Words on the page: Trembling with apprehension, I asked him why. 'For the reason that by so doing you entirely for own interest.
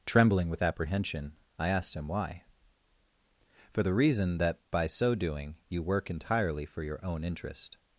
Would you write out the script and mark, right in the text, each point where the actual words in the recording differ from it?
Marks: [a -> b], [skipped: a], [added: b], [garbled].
Trembling with apprehension, I asked him why. 'For the reason that by so doing you [added: work] entirely for [added: your] own interest.